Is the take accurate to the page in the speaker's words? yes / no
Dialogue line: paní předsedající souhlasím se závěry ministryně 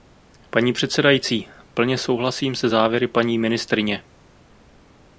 no